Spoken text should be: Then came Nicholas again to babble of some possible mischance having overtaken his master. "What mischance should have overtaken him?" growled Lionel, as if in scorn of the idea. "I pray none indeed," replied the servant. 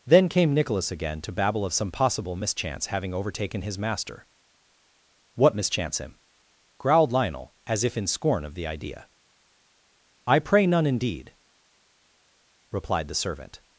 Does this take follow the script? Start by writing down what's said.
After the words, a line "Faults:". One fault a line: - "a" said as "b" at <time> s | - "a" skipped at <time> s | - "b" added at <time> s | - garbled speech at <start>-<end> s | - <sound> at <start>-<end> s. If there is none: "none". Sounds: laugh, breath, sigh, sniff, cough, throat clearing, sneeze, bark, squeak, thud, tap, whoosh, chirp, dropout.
Then came Nicholas again to babble of some possible mischance having overtaken his master. "What mischance him?" growled Lionel, as if in scorn of the idea. "I pray none indeed," replied the servant.
Faults:
- "should have overtaken" skipped at 6.0 s